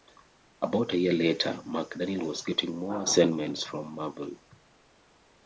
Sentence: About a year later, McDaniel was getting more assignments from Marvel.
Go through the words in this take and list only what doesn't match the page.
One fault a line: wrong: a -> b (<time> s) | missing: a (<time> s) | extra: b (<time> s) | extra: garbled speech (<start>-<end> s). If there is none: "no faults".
no faults